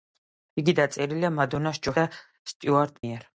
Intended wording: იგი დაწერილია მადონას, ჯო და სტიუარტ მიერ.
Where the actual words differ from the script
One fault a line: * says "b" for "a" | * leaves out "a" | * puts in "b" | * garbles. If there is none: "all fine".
all fine